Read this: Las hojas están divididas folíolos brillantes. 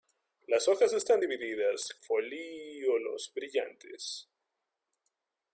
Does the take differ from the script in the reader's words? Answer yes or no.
no